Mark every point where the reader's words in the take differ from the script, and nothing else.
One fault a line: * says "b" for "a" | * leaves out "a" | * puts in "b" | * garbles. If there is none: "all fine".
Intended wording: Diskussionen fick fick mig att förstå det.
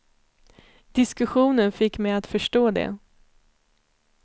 * leaves out "fick"